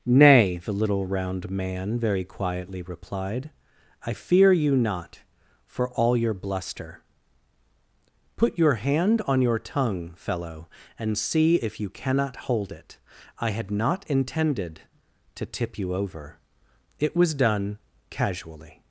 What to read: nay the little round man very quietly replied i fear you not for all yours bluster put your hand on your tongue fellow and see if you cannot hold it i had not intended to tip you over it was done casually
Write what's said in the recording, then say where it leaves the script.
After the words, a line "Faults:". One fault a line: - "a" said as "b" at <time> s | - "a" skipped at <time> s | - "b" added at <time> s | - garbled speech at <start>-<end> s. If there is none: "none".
nay the little round man very quietly replied i fear you not for all your bluster put your hand on your tongue fellow and see if you cannot hold it i had not intended to tip you over it was done casually
Faults:
- "yours" said as "your" at 6.2 s